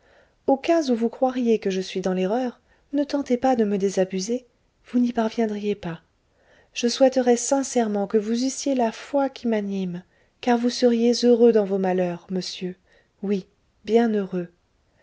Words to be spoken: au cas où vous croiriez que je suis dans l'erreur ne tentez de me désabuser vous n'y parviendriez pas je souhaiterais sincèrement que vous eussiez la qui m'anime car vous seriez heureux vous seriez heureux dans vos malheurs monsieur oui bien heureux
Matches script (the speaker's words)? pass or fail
fail